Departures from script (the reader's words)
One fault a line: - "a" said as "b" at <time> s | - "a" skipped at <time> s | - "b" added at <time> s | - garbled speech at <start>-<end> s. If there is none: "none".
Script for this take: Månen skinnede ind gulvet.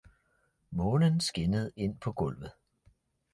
- "på" added at 2.0 s